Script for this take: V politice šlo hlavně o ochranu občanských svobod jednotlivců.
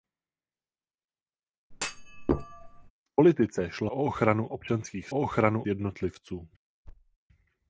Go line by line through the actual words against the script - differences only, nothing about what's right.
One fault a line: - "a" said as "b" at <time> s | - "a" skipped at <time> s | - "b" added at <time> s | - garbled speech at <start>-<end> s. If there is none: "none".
- "hlavně" skipped at 3.9 s
- "svobod" said as "ochranu" at 5.1 s